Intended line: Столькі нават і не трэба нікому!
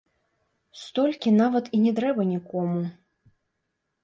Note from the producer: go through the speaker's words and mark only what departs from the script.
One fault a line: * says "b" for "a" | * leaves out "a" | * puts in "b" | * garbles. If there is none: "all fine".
all fine